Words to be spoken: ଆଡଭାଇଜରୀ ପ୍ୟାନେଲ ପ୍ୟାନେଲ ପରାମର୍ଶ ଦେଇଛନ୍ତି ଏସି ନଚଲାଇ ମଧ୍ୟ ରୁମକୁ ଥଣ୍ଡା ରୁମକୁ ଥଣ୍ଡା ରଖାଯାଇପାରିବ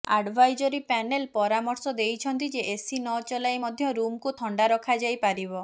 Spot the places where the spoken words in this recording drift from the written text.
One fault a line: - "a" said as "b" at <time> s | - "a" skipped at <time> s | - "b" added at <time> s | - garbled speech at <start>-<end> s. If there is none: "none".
- "ପ୍ୟାନେଲ" skipped at 1.3 s
- "ଯେ" added at 2.5 s
- "ରୁମକୁ ଥଣ୍ଡା" skipped at 4.7 s